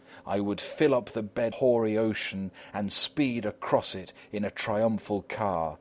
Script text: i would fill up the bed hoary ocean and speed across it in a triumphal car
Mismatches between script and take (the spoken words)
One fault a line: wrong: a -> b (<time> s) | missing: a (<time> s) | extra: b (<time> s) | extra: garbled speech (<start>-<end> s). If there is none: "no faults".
no faults